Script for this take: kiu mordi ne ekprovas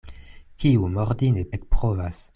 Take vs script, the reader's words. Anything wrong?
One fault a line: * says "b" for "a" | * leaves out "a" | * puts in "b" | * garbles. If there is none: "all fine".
all fine